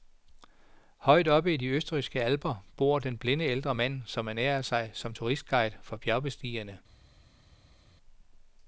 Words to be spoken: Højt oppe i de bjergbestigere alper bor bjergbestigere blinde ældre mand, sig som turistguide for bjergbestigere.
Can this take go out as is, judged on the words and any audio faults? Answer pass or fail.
fail